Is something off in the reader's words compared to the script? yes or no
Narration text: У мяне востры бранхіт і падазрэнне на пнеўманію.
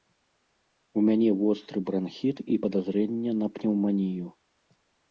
no